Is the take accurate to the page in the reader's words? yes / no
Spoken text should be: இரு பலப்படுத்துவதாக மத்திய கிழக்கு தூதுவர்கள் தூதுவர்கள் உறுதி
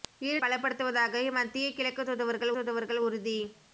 yes